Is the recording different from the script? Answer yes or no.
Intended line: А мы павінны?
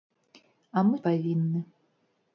no